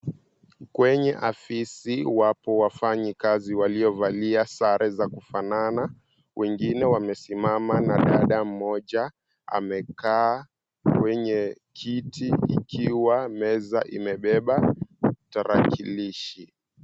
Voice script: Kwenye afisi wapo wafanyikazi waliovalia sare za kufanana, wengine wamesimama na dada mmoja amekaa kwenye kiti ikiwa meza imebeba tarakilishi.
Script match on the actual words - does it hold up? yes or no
yes